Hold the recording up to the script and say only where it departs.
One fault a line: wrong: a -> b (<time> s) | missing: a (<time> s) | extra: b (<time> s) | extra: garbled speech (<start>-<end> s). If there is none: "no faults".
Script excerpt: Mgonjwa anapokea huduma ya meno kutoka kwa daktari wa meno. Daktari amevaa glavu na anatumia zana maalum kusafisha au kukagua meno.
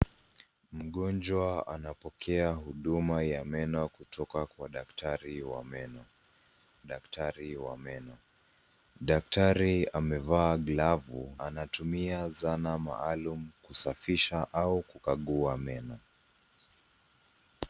extra: wa meno Daktari (7.6 s)
missing: na (11.4 s)